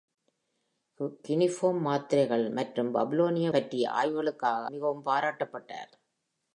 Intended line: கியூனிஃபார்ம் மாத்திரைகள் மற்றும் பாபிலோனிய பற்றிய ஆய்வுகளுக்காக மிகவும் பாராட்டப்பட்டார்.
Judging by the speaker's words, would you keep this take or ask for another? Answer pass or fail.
pass